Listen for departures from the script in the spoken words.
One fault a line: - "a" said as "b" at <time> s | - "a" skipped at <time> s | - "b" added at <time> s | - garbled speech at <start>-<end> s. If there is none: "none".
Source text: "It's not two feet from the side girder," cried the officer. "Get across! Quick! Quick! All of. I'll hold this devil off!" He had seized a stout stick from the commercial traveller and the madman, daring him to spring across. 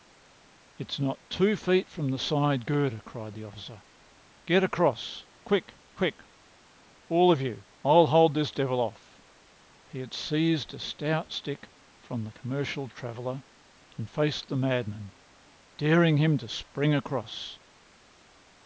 - "you" added at 7.4 s
- "faced" added at 14.1 s